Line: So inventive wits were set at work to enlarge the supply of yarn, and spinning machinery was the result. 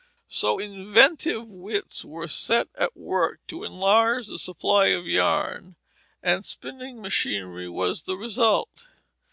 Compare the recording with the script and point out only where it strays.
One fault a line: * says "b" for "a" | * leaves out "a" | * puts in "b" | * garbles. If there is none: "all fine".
all fine